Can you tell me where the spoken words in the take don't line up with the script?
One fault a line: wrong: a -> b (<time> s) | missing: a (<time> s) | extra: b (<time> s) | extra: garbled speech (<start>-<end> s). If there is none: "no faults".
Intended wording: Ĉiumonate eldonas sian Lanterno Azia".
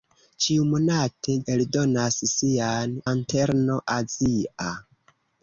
no faults